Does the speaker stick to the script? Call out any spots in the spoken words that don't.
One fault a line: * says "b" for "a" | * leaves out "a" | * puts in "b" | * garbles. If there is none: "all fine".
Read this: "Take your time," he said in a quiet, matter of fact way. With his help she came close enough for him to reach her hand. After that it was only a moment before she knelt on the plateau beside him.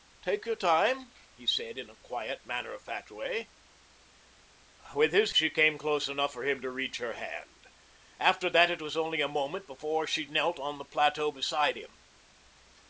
* leaves out "help"